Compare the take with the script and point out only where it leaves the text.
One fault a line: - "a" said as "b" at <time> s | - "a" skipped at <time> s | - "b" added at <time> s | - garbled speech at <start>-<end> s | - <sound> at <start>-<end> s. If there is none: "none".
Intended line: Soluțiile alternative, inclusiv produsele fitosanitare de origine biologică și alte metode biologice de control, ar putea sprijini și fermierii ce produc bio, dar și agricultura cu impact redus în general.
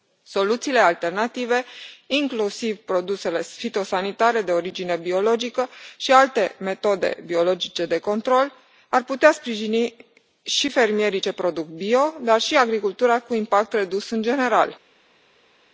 none